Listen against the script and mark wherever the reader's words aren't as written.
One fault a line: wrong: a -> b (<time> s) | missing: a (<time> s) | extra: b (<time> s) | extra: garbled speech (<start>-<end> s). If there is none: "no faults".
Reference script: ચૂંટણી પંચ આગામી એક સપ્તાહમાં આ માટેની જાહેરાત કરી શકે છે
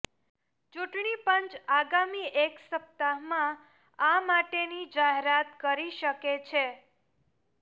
no faults